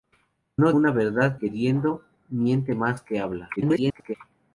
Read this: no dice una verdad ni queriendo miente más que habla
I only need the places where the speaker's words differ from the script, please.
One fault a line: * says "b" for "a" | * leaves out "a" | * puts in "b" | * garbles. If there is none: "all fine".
* leaves out "dice"
* leaves out "ni"
* garbles